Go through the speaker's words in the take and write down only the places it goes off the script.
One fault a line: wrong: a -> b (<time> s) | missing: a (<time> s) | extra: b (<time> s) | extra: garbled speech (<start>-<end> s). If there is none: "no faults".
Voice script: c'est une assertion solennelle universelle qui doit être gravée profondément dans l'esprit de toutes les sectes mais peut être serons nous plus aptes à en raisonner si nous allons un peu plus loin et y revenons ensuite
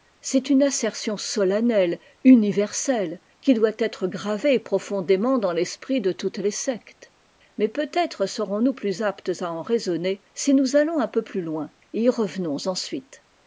no faults